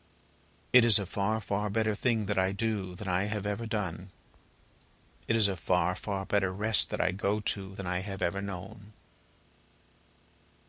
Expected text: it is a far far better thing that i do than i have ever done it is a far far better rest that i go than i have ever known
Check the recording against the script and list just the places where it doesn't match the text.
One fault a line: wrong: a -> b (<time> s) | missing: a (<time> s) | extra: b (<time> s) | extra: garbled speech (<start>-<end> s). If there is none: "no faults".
extra: to (7.4 s)